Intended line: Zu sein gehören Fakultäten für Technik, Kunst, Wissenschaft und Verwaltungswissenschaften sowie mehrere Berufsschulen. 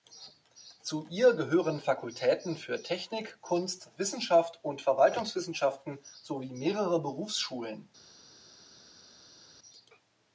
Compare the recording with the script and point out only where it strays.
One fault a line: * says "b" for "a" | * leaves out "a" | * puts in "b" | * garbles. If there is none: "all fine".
* says "ihr" for "sein"